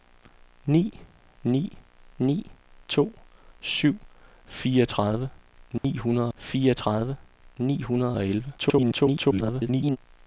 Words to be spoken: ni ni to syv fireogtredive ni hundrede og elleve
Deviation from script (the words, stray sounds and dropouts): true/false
true